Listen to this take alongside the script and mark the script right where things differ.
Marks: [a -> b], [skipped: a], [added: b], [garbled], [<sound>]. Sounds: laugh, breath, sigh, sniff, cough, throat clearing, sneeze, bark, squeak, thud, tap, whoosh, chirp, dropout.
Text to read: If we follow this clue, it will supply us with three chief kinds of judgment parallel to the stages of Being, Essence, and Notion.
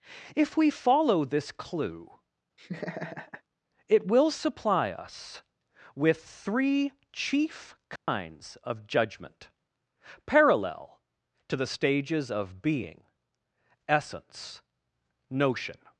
If we follow this clue, [laugh] it will supply us with three chief kinds [dropout] of judgment parallel to the stages of Being, Essence, [skipped: and] Notion.